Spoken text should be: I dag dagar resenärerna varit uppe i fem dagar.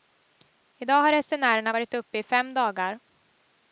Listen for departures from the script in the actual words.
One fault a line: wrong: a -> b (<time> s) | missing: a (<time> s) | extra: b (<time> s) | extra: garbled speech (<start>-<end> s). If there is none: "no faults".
wrong: dagar -> har (1.0 s)